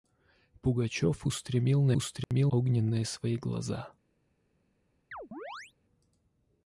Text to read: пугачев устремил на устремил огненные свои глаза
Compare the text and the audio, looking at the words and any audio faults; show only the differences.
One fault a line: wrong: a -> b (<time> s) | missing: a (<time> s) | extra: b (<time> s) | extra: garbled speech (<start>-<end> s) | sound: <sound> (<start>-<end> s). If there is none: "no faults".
sound: dropout (2.2-2.3 s)
sound: chirp (5.1-5.7 s)